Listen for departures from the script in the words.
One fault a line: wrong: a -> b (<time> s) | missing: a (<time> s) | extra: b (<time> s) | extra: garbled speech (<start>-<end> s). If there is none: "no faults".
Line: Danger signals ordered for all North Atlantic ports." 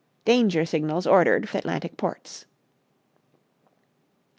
missing: for all North (1.5 s)